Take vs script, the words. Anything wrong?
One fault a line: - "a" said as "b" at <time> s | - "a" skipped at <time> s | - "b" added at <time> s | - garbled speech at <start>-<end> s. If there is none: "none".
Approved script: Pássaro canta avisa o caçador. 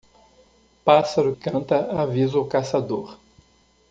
none